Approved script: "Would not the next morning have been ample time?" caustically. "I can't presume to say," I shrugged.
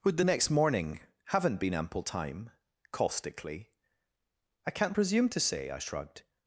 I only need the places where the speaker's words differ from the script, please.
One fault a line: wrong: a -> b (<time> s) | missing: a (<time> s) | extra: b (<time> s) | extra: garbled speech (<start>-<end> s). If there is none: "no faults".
missing: not (0.2 s)
wrong: have -> haven't (1.3 s)